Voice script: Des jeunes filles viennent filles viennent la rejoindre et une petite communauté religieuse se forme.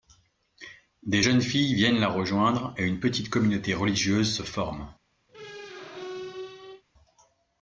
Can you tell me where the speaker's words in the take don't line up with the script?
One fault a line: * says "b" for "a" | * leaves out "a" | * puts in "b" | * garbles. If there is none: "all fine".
* leaves out "filles viennent"